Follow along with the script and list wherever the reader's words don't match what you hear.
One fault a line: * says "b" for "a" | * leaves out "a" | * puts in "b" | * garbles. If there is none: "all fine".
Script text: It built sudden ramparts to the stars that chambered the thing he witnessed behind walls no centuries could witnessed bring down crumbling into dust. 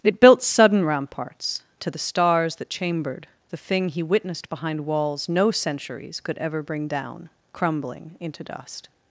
* says "ever" for "witnessed"